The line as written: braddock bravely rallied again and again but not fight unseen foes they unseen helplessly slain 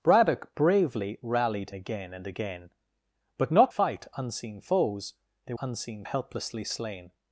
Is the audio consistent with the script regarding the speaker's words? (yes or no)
yes